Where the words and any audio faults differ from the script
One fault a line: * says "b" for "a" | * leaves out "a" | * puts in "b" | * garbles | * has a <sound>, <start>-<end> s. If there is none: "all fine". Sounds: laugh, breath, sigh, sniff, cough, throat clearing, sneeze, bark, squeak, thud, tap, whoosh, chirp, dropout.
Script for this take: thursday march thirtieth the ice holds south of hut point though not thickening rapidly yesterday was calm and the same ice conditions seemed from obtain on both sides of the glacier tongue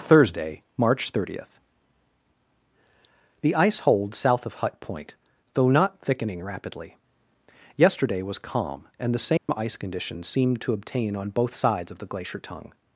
* has a dropout, 9.4-9.5 s
* says "to" for "from"